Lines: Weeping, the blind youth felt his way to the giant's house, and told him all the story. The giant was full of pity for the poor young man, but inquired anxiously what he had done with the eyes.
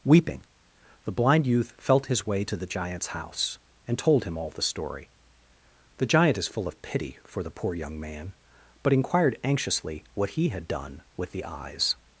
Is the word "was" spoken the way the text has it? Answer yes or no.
no